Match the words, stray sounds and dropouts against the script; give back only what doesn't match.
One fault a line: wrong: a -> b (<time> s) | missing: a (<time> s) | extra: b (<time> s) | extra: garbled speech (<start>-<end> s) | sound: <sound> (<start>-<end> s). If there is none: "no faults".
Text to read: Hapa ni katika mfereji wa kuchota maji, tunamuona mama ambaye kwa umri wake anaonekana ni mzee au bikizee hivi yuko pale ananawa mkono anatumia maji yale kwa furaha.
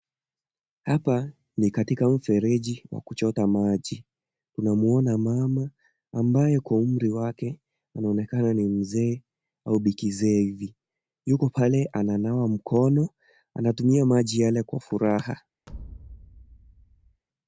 sound: thud (15.7-17.2 s)